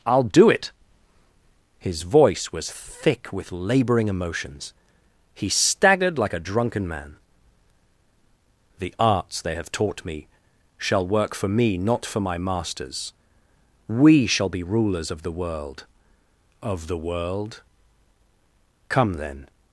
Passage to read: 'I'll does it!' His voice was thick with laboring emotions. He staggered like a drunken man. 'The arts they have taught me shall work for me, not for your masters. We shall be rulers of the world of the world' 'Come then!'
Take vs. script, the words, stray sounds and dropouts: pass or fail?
fail